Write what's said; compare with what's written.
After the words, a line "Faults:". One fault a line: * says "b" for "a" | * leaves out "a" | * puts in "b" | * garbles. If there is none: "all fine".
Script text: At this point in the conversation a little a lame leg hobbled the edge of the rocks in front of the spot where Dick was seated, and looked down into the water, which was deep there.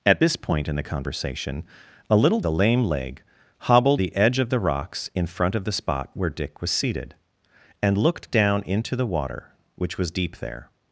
At this point in the conversation a little a lame leg hobbled the edge of the rocks in front of the spot where Dick was seated, and looked down into the water, which was deep there.
Faults:
all fine